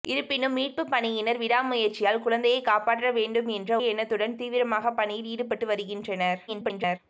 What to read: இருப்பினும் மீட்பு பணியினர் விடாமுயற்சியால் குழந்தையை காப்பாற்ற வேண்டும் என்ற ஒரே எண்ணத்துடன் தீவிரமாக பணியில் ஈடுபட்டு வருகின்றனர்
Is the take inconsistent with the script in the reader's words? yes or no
yes